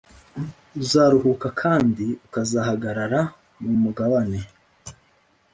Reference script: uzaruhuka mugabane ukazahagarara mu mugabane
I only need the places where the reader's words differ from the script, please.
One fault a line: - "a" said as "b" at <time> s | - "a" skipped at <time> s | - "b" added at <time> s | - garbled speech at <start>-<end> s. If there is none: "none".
- "mugabane" said as "kandi" at 1.6 s